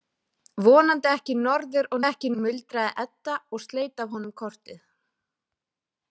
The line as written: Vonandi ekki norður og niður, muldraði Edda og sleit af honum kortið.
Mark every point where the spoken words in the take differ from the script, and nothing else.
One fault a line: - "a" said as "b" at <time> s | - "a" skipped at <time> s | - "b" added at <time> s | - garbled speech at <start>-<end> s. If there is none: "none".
- "niður" said as "ekki" at 2.0 s